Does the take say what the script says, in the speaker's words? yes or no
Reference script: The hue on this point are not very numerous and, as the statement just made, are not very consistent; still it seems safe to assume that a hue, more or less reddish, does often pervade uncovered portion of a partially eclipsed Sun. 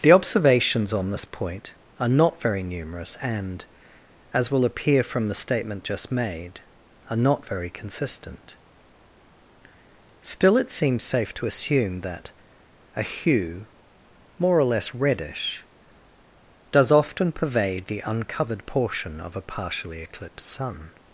no